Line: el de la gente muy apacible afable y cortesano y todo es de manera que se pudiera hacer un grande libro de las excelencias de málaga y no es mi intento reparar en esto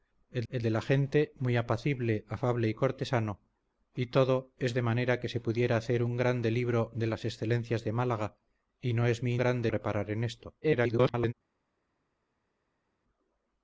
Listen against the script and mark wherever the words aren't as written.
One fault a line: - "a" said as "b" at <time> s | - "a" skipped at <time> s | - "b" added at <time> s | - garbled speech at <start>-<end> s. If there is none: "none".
- "el" added at 0.5 s
- "intento" said as "grande" at 9.4 s
- garbled speech at 10.6-11.3 s